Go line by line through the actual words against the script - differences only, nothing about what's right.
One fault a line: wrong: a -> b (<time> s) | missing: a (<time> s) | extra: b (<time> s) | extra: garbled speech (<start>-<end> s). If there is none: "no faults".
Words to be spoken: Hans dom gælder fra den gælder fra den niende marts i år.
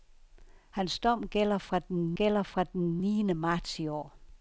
no faults